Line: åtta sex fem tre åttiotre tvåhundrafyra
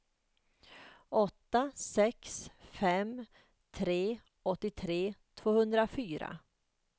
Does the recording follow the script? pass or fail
pass